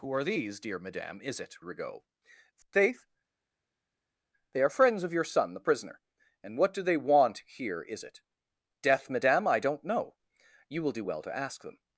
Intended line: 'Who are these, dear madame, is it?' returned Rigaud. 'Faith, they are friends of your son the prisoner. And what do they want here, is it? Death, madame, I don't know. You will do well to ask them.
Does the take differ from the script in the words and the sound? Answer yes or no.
yes